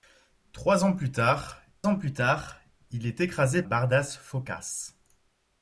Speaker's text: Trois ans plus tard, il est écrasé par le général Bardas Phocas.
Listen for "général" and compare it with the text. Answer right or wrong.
wrong